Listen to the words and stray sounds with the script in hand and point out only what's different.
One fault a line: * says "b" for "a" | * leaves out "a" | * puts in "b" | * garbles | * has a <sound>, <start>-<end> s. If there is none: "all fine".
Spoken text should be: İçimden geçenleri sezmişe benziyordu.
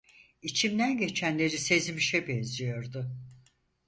all fine